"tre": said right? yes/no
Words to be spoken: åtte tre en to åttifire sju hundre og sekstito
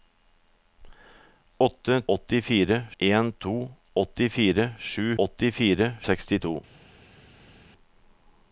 no